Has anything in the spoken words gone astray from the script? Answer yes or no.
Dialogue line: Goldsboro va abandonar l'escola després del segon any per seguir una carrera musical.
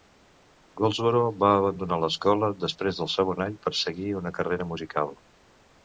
no